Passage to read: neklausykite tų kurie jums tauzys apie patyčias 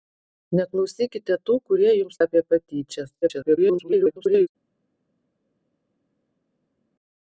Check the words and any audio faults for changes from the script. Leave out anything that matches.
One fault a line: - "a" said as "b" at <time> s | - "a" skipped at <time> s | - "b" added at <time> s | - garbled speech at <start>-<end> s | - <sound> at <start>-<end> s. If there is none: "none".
- "tauzys" skipped at 2.2 s
- garbled speech at 3.2-4.5 s